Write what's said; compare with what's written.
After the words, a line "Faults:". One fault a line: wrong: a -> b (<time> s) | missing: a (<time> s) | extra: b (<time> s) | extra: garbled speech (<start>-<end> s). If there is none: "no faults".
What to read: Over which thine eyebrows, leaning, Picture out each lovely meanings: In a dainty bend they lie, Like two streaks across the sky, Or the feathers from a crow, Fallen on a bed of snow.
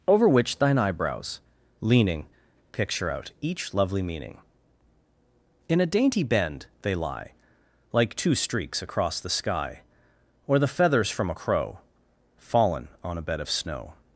Over which thine eyebrows, leaning, Picture out each lovely meaning: In a dainty bend they lie, Like two streaks across the sky, Or the feathers from a crow, Fallen on a bed of snow.
Faults:
wrong: meanings -> meaning (4.0 s)